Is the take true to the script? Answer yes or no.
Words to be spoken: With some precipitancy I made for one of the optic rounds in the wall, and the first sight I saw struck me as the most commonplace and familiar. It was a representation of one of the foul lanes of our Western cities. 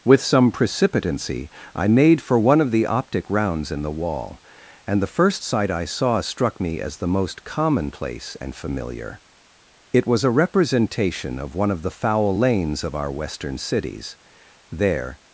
no